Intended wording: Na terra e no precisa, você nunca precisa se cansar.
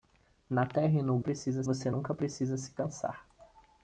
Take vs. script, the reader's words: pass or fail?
pass